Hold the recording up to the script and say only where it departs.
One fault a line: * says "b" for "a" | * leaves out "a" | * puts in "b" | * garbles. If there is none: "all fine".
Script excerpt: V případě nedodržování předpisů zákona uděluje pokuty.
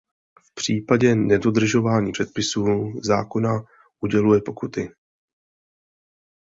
all fine